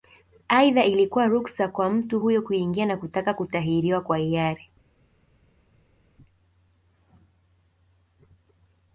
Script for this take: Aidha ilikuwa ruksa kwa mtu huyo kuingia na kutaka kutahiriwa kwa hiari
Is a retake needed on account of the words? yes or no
no